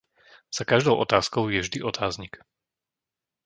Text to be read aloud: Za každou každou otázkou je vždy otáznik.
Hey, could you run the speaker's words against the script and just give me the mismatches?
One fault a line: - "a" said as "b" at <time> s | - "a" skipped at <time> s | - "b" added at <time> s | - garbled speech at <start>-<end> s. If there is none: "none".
- "každou" skipped at 1.0 s